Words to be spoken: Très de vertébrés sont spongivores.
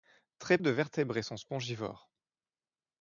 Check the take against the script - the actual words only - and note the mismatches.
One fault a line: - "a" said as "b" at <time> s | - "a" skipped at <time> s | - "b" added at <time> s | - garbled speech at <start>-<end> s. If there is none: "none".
none